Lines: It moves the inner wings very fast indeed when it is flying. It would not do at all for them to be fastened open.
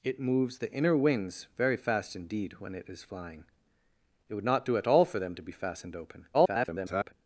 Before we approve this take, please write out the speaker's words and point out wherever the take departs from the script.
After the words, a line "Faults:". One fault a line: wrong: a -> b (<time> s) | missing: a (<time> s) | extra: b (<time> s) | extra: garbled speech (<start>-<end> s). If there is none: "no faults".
It moves the inner wings very fast indeed when it is flying. It would not do at all for them to be fastened open. [garbled]
Faults:
extra: garbled speech (6.3-7.1 s)